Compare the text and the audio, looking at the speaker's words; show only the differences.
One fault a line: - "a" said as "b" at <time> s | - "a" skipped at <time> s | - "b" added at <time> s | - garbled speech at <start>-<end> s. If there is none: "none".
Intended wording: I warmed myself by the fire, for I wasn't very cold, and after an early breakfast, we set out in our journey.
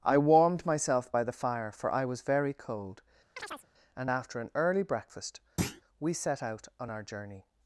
- "wasn't" said as "was" at 2.0 s
- "in" said as "on" at 6.8 s